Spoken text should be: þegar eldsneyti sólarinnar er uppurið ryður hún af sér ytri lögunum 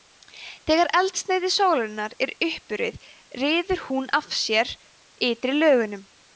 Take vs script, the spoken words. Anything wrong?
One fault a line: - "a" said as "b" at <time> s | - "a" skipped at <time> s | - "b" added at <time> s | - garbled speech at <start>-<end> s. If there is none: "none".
none